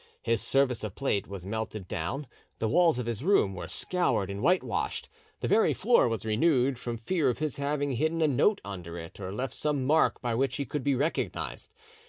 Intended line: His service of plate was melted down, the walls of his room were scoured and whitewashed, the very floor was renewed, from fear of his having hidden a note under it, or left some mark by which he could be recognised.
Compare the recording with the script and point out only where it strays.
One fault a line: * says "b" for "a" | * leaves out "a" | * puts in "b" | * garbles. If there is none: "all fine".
all fine